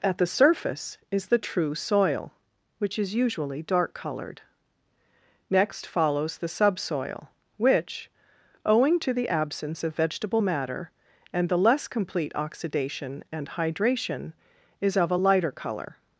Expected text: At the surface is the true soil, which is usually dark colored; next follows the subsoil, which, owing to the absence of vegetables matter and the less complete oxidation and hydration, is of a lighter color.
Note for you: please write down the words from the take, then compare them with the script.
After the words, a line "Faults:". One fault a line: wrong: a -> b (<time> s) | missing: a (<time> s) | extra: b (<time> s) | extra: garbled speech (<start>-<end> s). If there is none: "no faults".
At the surface is the true soil, which is usually dark colored; next follows the subsoil, which, owing to the absence of vegetable matter and the less complete oxidation and hydration, is of a lighter color.
Faults:
wrong: vegetables -> vegetable (9.9 s)